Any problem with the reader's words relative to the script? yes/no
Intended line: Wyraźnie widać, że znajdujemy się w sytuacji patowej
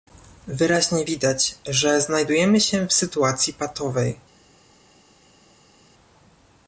no